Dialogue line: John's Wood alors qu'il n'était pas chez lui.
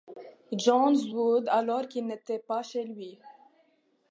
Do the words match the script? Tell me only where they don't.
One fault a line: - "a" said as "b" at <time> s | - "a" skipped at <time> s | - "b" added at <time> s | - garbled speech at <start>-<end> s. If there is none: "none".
none